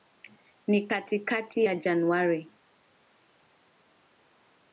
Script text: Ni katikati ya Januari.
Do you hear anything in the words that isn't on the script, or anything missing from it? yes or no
no